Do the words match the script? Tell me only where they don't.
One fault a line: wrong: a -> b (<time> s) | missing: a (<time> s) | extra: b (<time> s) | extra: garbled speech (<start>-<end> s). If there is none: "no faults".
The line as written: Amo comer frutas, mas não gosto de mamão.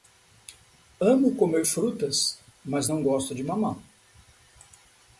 no faults